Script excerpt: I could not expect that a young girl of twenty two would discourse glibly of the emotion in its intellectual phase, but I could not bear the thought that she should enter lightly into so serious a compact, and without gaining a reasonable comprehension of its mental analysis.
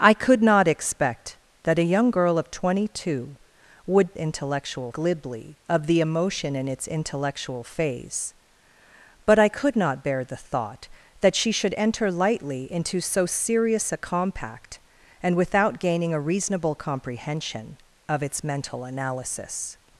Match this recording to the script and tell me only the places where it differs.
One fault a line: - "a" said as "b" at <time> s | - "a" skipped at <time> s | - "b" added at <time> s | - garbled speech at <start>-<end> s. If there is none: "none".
- "discourse" said as "intellectual" at 4.2 s